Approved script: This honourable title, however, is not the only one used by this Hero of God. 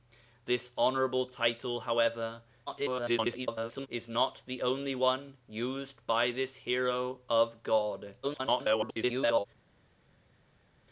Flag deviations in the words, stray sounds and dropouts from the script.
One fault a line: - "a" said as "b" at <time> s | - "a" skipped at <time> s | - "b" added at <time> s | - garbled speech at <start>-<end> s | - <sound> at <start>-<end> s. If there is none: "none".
- garbled speech at 2.7-3.9 s
- garbled speech at 8.2-9.5 s